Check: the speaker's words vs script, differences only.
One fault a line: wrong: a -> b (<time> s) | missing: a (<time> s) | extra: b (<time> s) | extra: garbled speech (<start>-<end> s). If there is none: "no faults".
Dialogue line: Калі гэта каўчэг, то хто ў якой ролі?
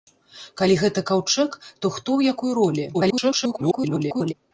extra: garbled speech (2.9-4.3 s)